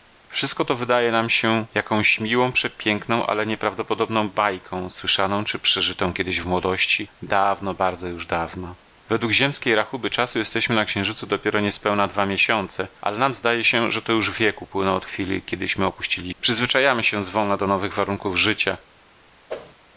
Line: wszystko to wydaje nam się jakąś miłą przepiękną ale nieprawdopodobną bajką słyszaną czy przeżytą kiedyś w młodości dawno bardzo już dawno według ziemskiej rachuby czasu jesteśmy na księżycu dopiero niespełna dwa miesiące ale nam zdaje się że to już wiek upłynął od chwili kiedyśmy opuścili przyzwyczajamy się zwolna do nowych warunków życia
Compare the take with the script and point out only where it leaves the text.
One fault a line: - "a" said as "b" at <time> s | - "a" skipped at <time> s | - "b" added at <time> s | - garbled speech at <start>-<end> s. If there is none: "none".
none